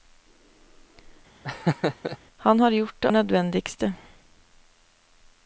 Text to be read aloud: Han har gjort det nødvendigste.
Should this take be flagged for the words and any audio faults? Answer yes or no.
yes